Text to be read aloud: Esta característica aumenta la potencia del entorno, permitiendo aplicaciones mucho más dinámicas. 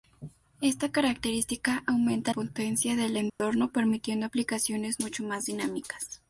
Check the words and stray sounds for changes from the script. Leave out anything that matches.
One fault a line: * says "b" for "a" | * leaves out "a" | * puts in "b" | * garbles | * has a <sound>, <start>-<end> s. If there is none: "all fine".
* leaves out "la"
* has a dropout, 3.3-3.4 s